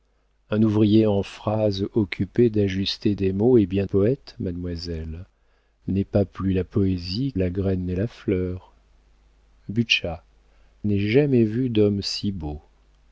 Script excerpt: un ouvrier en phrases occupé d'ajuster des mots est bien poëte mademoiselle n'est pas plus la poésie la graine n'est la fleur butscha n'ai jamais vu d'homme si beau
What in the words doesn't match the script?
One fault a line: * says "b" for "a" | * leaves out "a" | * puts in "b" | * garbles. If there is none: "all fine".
all fine